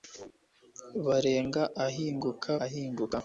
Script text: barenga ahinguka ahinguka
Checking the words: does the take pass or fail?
pass